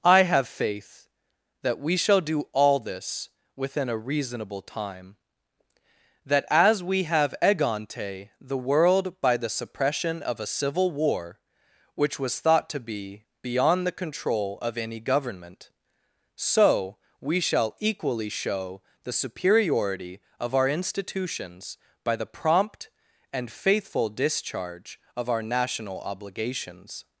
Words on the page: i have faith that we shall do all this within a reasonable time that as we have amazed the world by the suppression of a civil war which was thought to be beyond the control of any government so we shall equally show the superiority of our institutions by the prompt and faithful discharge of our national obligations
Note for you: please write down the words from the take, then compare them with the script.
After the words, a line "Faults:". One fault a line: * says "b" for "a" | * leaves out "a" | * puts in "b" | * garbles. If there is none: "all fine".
i have faith that we shall do all this within a reasonable time that as we have egante the world by the suppression of a civil war which was thought to be beyond the control of any government so we shall equally show the superiority of our institutions by the prompt and faithful discharge of our national obligations
Faults:
* says "egante" for "amazed"